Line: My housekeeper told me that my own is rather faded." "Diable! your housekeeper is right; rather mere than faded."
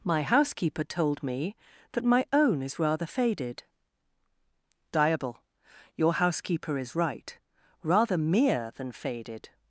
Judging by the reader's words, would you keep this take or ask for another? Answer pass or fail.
pass